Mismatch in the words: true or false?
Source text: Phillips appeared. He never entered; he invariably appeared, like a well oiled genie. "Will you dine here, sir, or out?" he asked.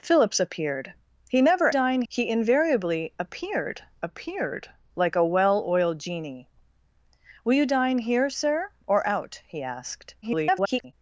true